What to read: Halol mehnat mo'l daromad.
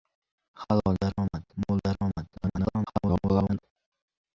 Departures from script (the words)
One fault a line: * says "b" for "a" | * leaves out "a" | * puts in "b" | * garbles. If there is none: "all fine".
* says "daromad" for "mehnat"
* garbles